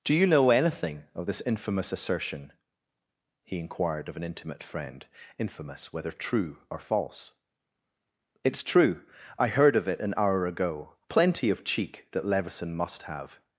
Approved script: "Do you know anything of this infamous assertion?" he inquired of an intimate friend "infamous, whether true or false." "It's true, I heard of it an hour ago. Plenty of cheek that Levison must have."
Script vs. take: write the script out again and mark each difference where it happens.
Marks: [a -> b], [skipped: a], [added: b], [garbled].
"Do you know anything of this infamous assertion?" he inquired of an intimate friend "infamous, whether true or false." "It's true, I heard of it an hour ago. Plenty of cheek that Levison must have."